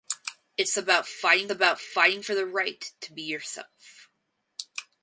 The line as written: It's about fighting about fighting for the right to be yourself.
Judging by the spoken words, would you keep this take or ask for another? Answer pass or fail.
pass